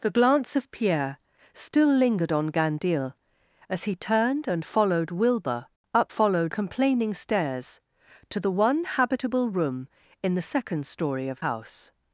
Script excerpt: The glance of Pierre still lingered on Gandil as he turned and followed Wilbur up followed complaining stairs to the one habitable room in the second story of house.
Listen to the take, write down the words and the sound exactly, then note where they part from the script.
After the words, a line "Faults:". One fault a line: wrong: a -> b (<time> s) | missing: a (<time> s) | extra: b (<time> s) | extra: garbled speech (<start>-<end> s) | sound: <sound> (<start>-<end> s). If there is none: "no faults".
The glance of Pierre still lingered on Gandil as he turned and followed Wilbur up followed complaining stairs to the one habitable room in the second story of house.
Faults:
no faults